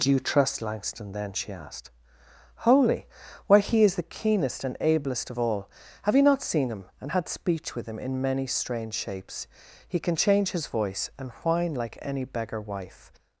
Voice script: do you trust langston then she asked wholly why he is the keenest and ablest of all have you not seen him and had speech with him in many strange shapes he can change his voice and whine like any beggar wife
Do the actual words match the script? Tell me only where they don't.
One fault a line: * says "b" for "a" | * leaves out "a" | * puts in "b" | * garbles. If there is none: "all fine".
all fine